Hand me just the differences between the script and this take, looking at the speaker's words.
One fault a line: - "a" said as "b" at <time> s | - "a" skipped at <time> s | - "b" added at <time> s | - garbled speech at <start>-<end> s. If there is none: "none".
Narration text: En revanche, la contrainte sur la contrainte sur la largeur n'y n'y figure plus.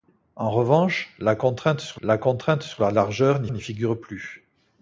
none